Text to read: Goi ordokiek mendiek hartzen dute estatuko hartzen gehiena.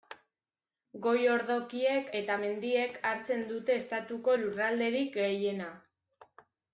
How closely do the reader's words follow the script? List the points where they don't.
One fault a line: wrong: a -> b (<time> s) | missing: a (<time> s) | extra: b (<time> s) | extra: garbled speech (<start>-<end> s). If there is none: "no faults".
extra: eta (2.2 s)
wrong: hartzen -> lurralderik (4.4 s)